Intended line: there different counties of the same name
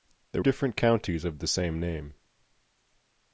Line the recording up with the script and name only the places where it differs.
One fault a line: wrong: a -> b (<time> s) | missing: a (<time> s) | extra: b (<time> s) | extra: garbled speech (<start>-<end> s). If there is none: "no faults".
no faults